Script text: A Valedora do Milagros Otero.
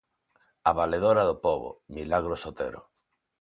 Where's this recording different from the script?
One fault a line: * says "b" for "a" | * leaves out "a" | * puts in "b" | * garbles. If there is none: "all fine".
* puts in "Pobo"